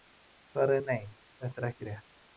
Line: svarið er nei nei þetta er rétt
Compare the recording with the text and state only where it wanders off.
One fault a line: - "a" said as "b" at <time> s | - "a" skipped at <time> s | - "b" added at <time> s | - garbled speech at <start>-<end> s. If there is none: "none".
- "nei" skipped at 1.1 s
- "ekki" added at 1.7 s